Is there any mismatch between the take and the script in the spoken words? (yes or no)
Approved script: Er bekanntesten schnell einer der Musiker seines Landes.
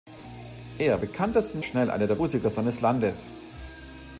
no